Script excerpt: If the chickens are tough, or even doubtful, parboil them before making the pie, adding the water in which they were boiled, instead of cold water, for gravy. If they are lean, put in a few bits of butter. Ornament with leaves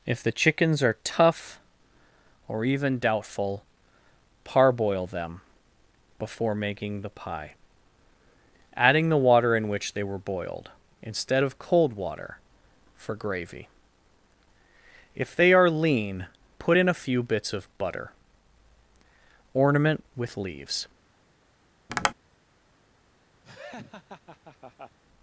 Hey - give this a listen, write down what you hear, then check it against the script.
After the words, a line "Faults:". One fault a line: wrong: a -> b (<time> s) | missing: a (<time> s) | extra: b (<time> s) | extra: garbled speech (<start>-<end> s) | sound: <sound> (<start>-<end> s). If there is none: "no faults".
If the chickens are tough, or even doubtful, parboil them before making the pie, adding the water in which they were boiled, instead of cold water, for gravy. If they are lean, put in a few bits of butter. Ornament with leaves
Faults:
sound: tap (21.9-22.1 s)
sound: laugh (23.4-25.0 s)